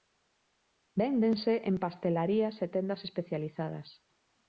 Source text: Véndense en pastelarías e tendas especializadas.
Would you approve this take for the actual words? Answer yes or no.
yes